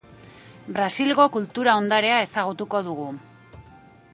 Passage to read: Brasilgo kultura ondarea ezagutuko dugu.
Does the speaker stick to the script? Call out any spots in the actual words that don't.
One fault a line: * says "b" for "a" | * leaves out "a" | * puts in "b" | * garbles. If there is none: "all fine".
all fine